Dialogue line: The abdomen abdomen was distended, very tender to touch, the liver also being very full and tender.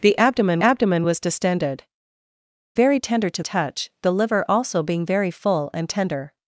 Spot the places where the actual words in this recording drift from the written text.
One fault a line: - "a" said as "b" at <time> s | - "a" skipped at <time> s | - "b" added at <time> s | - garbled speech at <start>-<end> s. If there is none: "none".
none